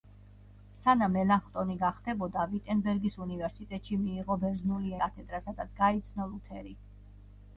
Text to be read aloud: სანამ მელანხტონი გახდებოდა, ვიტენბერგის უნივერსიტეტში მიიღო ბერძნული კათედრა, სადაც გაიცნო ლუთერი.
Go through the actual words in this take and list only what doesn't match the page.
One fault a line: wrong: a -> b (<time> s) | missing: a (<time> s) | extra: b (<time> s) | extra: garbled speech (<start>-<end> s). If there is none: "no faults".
no faults